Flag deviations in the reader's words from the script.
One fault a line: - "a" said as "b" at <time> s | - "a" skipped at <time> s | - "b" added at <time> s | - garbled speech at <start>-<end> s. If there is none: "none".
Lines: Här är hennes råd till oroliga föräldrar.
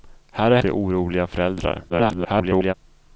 - "hennes råd" skipped at 0.6 s
- garbled speech at 1.9-2.7 s